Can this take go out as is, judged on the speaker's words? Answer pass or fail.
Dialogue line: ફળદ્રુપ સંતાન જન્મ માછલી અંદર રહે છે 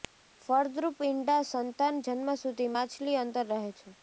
fail